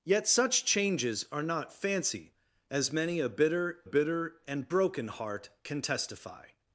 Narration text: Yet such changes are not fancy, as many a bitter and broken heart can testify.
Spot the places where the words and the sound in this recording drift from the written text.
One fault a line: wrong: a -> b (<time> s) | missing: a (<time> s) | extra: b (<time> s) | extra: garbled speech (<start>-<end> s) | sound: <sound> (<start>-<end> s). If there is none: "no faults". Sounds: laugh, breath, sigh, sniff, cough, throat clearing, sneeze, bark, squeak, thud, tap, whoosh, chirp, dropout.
extra: bitter (3.8 s)